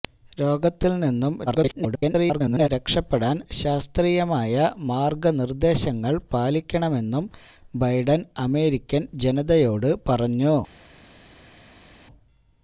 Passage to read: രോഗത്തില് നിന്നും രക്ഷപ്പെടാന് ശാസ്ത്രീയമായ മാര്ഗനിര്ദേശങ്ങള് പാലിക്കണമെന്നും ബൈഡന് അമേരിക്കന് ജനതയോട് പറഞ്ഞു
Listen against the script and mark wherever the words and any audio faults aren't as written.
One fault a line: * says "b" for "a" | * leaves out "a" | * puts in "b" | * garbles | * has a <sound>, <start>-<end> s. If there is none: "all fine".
* garbles